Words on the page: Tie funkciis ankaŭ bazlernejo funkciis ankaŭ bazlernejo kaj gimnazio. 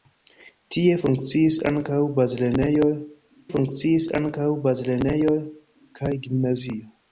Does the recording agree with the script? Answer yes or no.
yes